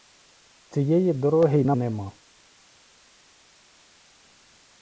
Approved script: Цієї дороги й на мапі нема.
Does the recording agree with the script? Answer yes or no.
no